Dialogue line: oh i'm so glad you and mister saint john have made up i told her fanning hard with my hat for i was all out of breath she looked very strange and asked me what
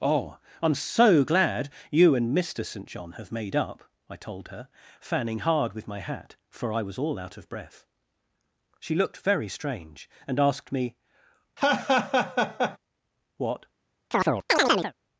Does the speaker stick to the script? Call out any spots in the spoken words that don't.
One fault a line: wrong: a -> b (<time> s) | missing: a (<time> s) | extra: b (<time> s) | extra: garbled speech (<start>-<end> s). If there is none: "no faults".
no faults